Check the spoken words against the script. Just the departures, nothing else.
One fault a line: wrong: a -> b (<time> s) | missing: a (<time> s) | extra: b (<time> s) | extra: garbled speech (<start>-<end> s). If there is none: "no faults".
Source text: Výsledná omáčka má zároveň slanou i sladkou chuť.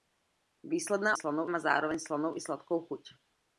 wrong: omáčka -> slanou (1.1 s)